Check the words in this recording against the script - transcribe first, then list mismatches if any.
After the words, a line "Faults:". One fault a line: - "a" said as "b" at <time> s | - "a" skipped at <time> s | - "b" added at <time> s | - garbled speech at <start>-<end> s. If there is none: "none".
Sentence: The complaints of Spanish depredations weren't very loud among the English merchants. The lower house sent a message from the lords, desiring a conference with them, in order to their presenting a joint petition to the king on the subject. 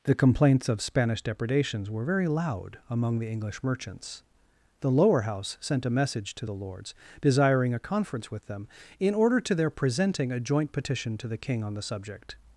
The complaints of Spanish depredations were very loud among the English merchants. The lower house sent a message to the lords, desiring a conference with them, in order to their presenting a joint petition to the king on the subject.
Faults:
- "weren't" said as "were" at 1.9 s
- "from" said as "to" at 6.3 s